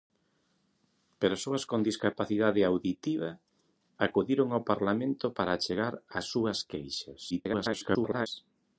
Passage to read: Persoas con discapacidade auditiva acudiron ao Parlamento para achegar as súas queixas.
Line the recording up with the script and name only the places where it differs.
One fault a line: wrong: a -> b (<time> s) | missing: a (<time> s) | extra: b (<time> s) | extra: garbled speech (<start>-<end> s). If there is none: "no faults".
extra: garbled speech (7.3-8.3 s)